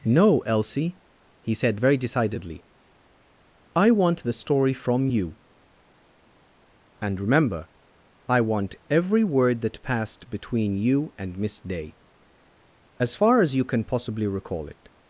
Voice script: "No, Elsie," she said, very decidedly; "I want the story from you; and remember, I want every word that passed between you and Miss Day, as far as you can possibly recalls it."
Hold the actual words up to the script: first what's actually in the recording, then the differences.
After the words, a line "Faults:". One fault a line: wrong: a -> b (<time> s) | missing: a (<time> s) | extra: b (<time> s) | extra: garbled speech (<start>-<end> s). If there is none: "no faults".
"No, Elsie," he said, very decidedly; "I want the story from you; and remember, I want every word that passed between you and Miss Day, as far as you can possibly recall it."
Faults:
wrong: she -> he (1.4 s)
wrong: recalls -> recall (14.3 s)